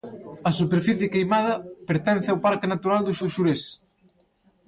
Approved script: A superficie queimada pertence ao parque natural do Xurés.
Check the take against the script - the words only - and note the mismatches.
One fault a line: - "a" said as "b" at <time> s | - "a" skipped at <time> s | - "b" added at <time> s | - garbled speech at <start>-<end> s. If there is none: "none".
- "do" added at 3.2 s